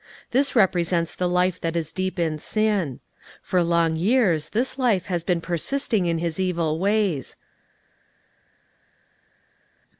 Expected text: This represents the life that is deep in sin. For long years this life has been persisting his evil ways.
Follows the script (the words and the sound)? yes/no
no